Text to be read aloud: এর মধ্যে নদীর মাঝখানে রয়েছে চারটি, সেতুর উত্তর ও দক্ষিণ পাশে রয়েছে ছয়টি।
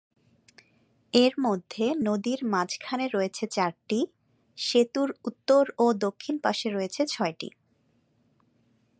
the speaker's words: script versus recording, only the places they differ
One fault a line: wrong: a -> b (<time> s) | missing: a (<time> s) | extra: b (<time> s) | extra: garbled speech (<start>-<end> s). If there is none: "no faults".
no faults